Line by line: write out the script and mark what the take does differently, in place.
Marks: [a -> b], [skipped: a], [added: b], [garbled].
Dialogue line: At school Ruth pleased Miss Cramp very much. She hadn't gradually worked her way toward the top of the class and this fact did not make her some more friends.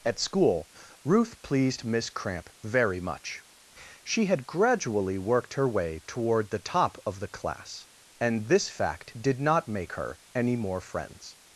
At school Ruth pleased Miss Cramp very much. She [hadn't -> had] gradually worked her way toward the top of the class and this fact did not make her [some -> any] more friends.